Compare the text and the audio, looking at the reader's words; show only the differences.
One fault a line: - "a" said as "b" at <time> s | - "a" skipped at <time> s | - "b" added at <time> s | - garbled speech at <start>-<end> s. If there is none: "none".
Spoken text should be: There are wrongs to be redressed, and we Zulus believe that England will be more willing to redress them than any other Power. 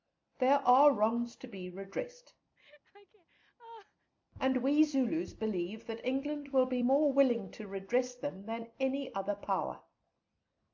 none